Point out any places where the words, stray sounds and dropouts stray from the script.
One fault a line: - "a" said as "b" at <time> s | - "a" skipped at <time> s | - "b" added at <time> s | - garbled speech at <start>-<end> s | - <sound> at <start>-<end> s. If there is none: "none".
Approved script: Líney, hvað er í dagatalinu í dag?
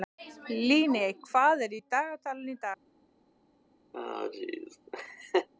- laugh at 3.9-5.5 s